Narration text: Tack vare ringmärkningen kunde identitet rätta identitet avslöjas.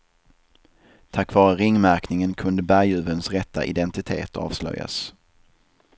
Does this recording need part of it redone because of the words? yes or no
yes